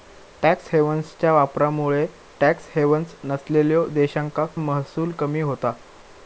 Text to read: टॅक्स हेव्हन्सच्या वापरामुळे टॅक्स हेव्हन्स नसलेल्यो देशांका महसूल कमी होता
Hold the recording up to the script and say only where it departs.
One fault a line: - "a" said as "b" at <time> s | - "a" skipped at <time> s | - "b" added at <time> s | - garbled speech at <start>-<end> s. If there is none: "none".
none